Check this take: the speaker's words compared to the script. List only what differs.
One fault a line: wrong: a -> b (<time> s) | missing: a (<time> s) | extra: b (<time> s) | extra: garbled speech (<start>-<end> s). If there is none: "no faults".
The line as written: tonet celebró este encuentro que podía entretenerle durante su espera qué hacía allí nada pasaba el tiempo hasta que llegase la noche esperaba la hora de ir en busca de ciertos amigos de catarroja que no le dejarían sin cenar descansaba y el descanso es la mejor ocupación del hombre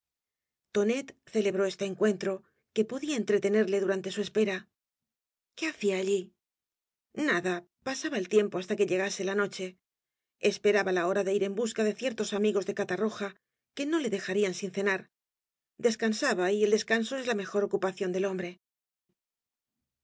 no faults